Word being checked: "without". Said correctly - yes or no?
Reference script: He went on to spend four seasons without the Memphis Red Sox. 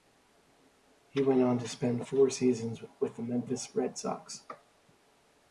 no